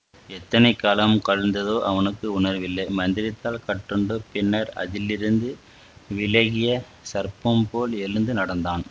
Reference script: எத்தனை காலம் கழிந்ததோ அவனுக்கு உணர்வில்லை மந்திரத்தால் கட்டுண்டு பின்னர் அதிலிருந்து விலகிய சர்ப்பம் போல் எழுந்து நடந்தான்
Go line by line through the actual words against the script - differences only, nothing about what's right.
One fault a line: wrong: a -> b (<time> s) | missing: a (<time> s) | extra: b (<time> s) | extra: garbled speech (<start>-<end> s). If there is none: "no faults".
no faults